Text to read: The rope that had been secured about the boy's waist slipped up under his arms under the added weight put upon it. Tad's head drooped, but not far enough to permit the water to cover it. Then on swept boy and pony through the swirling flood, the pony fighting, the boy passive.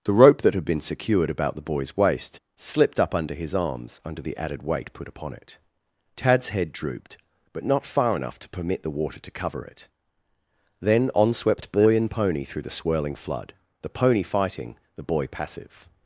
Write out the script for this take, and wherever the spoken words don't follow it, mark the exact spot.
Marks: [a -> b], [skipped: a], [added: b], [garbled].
The rope that had been secured about the boy's waist slipped up under his arms under the added weight put upon it. Tad's head drooped, but not far enough to permit the water to cover it. Then on swept boy and pony through the swirling flood, the pony fighting, the boy passive.